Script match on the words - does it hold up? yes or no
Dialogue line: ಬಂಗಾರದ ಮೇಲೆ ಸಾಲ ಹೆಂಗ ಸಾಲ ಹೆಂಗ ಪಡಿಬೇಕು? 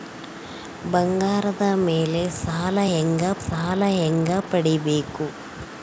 yes